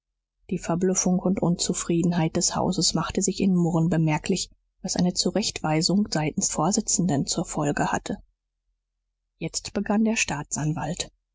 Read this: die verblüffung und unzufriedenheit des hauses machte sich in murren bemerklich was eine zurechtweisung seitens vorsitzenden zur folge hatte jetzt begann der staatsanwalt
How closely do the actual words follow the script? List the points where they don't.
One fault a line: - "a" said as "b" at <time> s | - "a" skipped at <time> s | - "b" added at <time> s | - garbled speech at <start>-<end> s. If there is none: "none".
none